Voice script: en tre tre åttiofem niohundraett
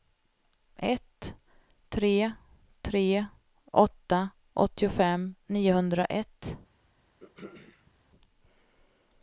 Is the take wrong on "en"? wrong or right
wrong